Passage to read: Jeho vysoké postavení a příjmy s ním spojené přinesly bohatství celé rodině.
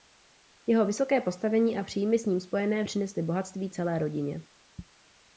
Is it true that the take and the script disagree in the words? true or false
false